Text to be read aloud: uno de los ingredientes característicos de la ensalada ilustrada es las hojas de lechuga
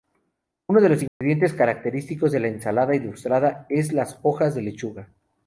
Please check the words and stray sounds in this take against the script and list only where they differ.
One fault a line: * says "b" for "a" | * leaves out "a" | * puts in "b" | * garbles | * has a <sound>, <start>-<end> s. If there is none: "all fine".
* has a dropout, 1.1-1.2 s